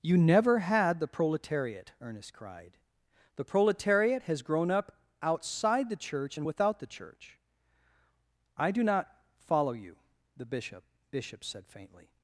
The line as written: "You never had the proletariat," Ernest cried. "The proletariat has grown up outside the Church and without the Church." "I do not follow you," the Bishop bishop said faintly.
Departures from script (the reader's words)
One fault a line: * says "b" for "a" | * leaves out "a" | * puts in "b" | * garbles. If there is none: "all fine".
all fine